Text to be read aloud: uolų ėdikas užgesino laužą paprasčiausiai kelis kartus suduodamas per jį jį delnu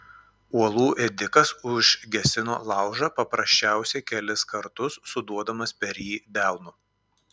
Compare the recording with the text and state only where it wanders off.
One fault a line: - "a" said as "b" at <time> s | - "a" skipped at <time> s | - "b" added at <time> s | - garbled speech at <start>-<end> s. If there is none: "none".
- "jį" skipped at 6.2 s